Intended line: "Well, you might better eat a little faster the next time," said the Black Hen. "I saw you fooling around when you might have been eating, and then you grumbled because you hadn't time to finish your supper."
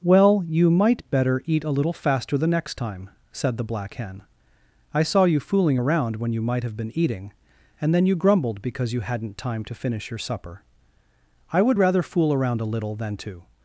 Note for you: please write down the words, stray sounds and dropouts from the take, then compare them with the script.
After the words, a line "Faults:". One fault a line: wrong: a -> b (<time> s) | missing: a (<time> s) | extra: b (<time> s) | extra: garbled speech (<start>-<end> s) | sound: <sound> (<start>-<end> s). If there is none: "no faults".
"Well, you might better eat a little faster the next time," said the Black Hen. "I saw you fooling around when you might have been eating, and then you grumbled because you hadn't time to finish your supper." "I would rather fool around a little than to
Faults:
extra: I would rather fool around a little than to (11.5 s)